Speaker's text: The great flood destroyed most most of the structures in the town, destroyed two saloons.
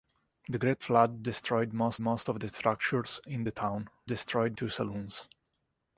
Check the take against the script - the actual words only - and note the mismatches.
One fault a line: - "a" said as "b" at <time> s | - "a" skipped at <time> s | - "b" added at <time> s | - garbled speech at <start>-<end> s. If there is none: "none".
none